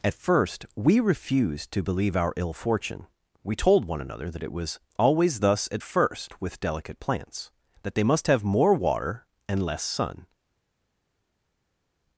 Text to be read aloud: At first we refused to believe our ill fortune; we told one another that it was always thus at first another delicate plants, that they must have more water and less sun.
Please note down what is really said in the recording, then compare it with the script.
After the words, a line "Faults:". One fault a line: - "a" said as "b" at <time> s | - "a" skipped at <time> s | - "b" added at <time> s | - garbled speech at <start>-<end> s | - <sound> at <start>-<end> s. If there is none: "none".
At first we refused to believe our ill fortune; we told one another that it was always thus at first with delicate plants, that they must have more water and less sun.
Faults:
- "another" said as "with" at 6.4 s